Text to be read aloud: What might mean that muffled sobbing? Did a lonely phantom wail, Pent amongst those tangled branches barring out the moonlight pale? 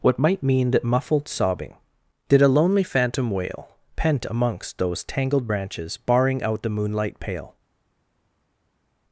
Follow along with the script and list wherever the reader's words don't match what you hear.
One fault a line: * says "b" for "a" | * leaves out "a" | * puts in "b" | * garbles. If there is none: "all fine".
all fine